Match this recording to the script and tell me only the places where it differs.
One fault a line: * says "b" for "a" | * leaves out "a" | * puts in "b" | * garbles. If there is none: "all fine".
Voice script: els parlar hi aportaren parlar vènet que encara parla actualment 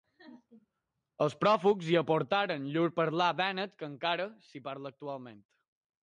* says "pròfugs" for "parlar"
* puts in "llur"
* puts in "s'hi"